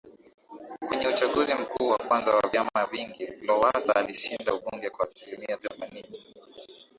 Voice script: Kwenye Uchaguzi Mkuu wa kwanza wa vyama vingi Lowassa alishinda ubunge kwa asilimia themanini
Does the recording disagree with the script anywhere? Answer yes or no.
no